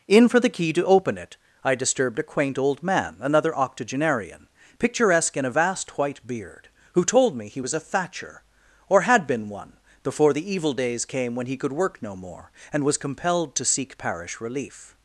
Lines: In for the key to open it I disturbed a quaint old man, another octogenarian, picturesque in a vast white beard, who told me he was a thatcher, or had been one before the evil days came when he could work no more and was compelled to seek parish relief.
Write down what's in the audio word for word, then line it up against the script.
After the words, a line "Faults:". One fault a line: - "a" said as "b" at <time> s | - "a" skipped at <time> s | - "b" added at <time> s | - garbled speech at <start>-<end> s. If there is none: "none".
In for the key to open it I disturbed a quaint old man, another octogenarian, picturesque in a vast white beard, who told me he was a thatcher, or had been one before the evil days came when he could work no more and was compelled to seek parish relief.
Faults:
none